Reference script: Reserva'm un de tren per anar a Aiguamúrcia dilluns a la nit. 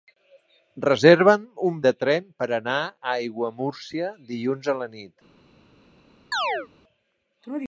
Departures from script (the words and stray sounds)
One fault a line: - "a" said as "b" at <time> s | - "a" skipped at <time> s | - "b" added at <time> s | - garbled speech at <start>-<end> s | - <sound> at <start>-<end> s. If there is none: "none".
- chirp at 6.3-6.7 s